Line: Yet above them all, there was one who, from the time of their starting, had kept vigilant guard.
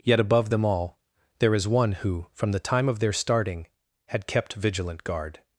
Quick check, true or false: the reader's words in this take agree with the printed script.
false